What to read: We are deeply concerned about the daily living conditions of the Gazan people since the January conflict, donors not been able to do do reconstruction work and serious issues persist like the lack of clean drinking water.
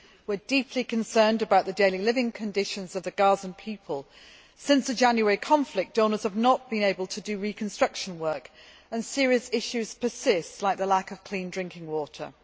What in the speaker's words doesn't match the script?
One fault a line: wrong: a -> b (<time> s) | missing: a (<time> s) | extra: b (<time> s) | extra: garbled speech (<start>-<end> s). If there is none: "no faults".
extra: have (6.2 s)
missing: do (7.4 s)